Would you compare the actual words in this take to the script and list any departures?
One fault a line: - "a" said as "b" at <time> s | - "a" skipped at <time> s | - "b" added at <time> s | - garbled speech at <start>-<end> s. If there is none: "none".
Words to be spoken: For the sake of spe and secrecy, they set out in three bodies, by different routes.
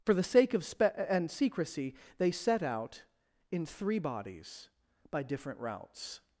none